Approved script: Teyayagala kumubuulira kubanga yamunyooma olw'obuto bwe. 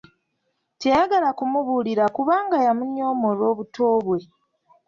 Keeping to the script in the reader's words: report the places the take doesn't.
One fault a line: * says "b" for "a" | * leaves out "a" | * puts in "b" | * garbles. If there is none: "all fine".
all fine